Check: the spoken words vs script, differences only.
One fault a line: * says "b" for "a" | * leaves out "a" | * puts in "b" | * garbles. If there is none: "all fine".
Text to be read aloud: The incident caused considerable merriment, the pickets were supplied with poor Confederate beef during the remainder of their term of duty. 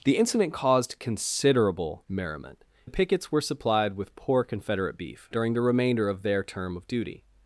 all fine